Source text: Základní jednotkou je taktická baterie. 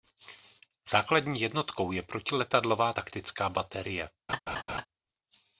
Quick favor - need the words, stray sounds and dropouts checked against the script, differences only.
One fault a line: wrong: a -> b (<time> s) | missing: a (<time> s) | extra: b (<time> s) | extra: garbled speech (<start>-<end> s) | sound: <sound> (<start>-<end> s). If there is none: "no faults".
extra: protiletadlová (2.0 s)
sound: laugh (4.3-4.9 s)